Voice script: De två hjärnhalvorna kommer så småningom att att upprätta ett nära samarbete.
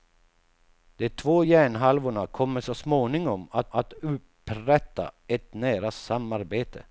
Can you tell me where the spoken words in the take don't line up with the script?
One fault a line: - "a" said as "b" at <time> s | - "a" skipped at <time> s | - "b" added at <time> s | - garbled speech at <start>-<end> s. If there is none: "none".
none